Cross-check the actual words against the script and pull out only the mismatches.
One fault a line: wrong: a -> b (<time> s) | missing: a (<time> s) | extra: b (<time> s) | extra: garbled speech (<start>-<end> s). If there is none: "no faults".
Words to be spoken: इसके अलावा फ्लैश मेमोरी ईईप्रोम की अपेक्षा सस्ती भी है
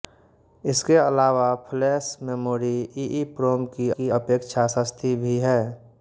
extra: की (4.0 s)